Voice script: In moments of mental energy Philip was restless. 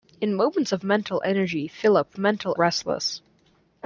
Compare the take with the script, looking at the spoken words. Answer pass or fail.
fail